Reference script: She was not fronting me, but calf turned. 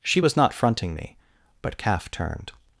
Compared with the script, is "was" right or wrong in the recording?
right